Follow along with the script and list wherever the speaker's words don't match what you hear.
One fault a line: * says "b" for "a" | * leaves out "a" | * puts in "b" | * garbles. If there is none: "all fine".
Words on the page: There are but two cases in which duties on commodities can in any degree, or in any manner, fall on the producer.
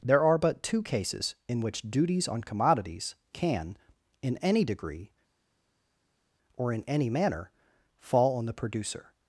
all fine